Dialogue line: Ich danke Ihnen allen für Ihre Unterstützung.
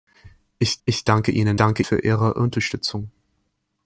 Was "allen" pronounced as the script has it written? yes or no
no